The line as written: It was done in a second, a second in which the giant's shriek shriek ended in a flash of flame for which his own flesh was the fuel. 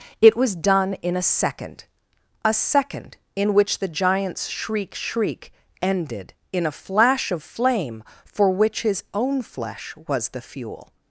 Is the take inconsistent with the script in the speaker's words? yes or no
no